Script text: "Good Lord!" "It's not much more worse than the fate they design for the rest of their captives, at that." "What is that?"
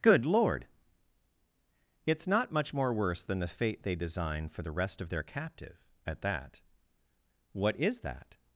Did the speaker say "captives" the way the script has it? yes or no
no